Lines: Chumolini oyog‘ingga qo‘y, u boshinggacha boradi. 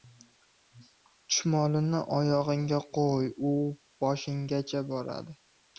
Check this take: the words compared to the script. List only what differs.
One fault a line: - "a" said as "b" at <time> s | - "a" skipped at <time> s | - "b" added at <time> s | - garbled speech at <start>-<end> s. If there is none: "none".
none